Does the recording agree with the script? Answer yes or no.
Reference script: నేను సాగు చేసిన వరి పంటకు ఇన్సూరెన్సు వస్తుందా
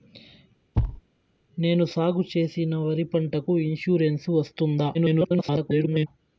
no